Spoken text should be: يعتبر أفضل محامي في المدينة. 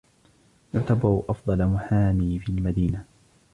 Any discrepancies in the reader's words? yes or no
no